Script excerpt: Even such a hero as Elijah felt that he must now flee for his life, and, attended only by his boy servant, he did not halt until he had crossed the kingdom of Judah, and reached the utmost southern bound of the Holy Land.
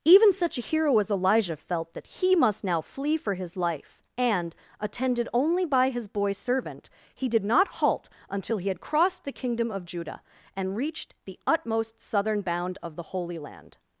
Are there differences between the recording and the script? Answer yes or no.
no